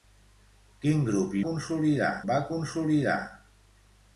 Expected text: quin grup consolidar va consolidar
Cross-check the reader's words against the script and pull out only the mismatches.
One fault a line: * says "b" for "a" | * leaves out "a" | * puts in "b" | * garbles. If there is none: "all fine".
all fine